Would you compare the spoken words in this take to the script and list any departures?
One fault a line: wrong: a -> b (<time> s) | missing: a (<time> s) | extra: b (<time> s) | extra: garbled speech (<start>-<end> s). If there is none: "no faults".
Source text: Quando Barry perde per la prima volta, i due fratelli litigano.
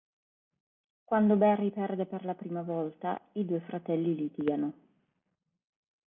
no faults